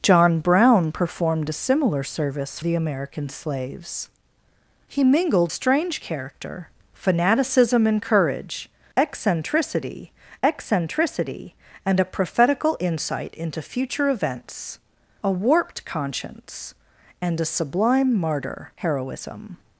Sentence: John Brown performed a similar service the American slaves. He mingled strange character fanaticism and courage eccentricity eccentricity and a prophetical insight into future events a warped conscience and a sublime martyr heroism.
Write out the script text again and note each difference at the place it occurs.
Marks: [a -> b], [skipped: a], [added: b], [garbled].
John Brown performed a similar service the American slaves. He mingled strange character fanaticism and courage eccentricity eccentricity and a prophetical insight into future events a warped conscience and a sublime martyr heroism.